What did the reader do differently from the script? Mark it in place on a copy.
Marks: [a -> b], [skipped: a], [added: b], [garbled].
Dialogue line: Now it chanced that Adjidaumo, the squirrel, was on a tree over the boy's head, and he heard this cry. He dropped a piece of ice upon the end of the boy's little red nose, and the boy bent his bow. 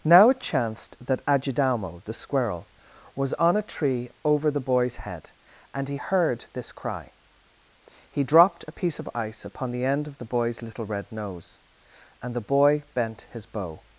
Now it chanced that Adjidaumo, the squirrel, was on a tree over the boy's head, and he heard this cry. He dropped a piece of ice upon the end of the boy's little red nose, and the boy bent his bow.